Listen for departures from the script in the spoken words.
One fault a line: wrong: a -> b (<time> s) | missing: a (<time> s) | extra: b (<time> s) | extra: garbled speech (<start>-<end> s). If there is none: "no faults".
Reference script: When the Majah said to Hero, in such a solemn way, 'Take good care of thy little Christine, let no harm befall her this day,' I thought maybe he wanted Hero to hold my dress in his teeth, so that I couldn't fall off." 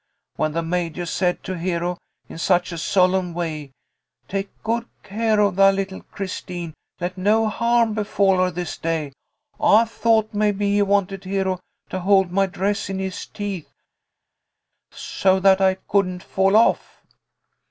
no faults